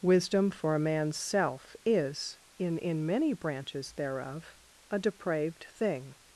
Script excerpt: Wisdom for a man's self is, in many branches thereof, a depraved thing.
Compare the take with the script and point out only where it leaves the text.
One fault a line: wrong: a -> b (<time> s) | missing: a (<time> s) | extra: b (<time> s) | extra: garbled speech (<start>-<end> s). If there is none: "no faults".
extra: in (2.8 s)